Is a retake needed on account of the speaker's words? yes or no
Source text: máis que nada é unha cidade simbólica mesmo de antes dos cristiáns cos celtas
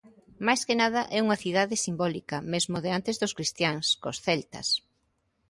no